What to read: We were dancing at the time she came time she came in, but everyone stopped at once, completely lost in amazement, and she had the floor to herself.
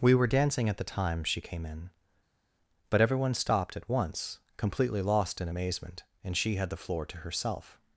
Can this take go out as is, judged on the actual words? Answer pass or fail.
fail